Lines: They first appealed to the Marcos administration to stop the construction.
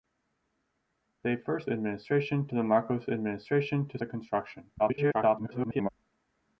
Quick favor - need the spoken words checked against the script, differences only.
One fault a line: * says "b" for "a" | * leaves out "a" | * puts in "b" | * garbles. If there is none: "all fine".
* says "administration" for "appealed"
* leaves out "stop"
* garbles